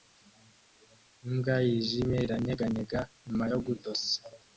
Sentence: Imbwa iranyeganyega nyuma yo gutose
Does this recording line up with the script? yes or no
no